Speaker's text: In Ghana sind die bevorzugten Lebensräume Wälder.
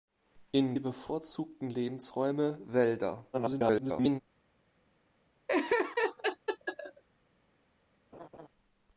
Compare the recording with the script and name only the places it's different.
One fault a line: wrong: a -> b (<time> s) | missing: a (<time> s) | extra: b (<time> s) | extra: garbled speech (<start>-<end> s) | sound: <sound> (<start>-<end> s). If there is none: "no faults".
missing: Ghana sind (0.8 s)
extra: garbled speech (3.3-4.2 s)
sound: laugh (5.5-7.0 s)
sound: laugh (8.1-8.5 s)